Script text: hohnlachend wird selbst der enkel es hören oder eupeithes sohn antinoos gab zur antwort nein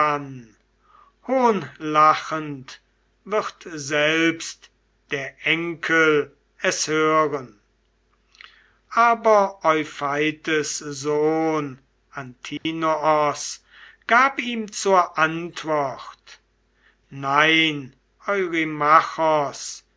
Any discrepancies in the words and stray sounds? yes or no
yes